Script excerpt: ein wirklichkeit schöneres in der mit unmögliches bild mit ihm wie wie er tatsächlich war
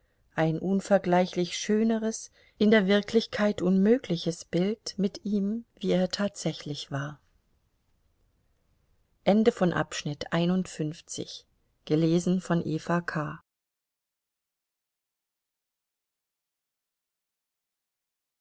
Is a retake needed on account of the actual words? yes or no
yes